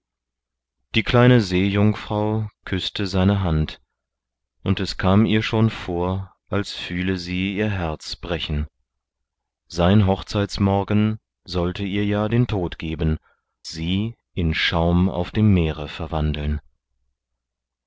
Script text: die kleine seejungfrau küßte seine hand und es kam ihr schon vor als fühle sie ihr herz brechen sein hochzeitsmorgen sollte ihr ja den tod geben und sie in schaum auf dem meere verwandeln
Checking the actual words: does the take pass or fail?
fail